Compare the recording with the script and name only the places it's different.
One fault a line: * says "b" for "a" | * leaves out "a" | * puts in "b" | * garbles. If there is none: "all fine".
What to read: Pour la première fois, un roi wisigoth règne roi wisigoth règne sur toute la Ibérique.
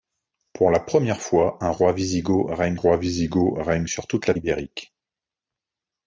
all fine